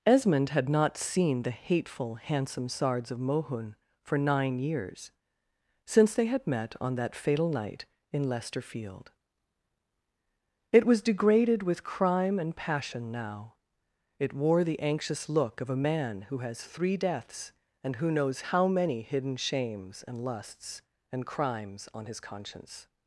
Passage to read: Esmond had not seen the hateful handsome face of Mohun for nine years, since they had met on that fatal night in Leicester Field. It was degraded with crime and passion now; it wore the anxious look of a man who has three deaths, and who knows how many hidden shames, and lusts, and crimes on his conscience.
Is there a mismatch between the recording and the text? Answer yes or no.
yes